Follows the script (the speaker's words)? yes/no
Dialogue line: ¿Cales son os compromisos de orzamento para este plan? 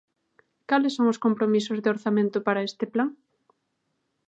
yes